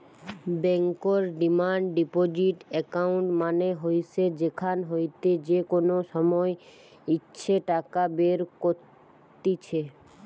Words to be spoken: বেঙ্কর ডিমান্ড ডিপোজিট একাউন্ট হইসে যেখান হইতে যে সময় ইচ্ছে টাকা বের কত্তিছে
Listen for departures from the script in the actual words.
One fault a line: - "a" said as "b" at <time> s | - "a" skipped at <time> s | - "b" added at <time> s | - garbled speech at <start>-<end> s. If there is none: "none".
- "মানে" added at 3.4 s
- "কোনো" added at 5.7 s